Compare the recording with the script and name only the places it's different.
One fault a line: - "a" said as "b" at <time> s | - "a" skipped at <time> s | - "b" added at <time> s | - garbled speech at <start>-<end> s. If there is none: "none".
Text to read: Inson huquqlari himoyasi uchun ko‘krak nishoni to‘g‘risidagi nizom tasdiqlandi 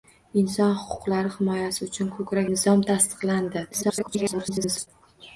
- "nishoni to‘g‘risidagi" skipped at 2.5 s
- garbled speech at 3.7-4.9 s